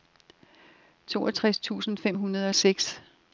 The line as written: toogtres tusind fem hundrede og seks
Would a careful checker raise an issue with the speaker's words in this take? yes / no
no